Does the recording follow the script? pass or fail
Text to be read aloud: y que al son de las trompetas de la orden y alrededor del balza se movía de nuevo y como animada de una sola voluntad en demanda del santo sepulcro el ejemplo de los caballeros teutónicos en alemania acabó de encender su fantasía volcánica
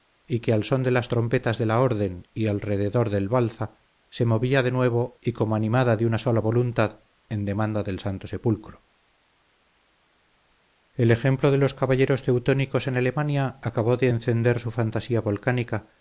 pass